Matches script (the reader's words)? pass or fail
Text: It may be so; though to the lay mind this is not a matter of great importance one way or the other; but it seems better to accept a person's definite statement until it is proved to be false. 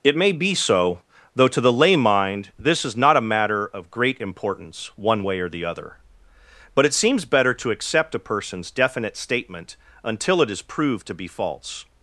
pass